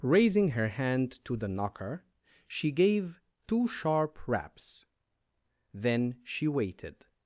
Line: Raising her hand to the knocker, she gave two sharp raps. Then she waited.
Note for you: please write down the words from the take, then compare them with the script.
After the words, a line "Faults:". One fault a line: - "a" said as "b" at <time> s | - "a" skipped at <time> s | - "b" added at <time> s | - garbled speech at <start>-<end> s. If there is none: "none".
Raising her hand to the knocker, she gave two sharp raps. Then she waited.
Faults:
none